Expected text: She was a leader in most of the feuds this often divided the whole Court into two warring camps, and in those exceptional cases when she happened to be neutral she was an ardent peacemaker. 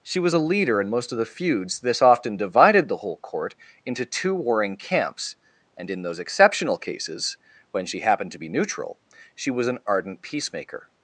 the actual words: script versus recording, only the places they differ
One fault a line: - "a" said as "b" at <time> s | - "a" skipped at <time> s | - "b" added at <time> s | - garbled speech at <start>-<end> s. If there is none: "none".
none